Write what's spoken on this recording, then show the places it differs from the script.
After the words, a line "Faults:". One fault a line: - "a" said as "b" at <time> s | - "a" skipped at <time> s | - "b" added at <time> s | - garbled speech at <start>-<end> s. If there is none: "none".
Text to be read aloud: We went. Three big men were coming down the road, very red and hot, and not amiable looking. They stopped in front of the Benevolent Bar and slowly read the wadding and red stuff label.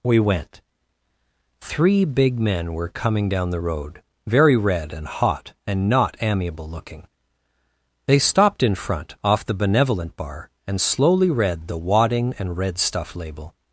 We went. Three big men were coming down the road, very red and hot, and not amiable looking. They stopped in front off the Benevolent Bar and slowly read the wadding and red stuff label.
Faults:
- "of" said as "off" at 9.2 s